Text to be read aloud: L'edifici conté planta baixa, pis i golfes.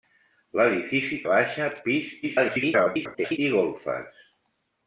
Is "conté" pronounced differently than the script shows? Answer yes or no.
yes